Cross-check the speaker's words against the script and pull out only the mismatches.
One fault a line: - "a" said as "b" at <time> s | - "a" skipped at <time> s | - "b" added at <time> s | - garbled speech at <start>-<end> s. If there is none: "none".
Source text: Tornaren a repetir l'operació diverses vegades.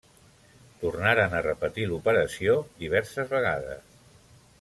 none